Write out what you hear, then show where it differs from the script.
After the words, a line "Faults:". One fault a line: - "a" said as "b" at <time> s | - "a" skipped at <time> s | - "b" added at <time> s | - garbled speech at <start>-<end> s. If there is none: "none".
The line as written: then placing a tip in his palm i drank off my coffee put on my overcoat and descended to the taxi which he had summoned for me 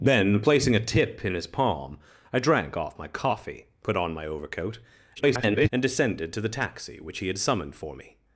then placing a tip in his palm i drank off my coffee put on my overcoat [garbled] and descended to the taxi which he had summoned for me
Faults:
- garbled speech at 5.2-5.7 s